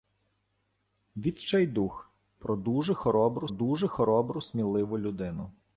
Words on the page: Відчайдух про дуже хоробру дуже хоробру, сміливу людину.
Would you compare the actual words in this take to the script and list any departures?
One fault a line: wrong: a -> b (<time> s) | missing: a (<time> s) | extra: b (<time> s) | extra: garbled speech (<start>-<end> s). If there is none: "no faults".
no faults